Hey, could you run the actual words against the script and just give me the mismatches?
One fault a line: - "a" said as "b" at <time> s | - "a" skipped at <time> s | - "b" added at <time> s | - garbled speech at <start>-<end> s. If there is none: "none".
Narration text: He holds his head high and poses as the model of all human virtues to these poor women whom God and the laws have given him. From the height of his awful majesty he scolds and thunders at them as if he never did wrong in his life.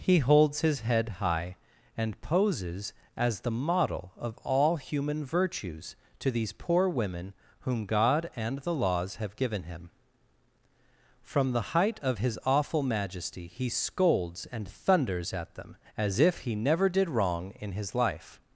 none